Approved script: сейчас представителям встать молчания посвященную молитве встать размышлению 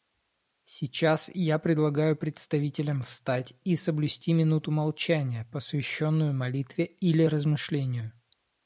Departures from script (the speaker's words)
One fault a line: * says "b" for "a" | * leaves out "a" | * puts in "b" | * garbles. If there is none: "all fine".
* puts in "я предлагаю"
* puts in "и соблюсти минуту"
* says "или" for "встать"